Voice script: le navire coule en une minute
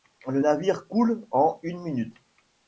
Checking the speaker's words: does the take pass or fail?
pass